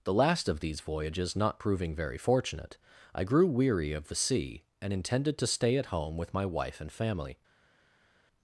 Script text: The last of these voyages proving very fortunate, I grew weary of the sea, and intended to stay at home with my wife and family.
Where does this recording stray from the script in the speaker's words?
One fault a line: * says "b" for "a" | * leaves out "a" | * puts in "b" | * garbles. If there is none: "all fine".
* puts in "not"